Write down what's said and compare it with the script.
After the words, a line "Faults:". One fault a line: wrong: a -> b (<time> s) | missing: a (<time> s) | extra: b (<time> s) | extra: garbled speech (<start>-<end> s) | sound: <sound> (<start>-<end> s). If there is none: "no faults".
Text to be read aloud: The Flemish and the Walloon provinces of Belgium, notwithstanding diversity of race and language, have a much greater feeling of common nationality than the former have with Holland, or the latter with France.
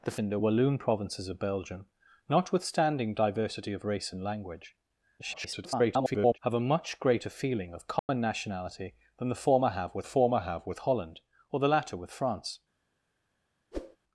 The And the Walloon provinces of Belgium, notwithstanding diversity of race and language, [garbled] have a much greater feeling of common nationality than the former have with former have with Holland, or the latter with France.
Faults:
missing: Flemish (0.2 s)
extra: garbled speech (5.2-6.4 s)
sound: dropout (8.0-8.1 s)
extra: former have with (10.0 s)
sound: whoosh (13.7-14.0 s)